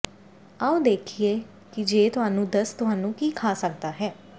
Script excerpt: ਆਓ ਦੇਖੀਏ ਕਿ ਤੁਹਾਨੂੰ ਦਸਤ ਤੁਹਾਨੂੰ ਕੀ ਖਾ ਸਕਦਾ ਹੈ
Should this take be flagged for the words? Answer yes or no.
yes